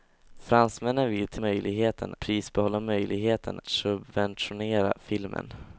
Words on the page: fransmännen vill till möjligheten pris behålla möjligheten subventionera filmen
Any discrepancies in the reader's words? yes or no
no